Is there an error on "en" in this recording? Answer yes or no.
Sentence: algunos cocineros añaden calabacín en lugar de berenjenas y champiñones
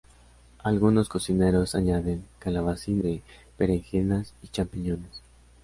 yes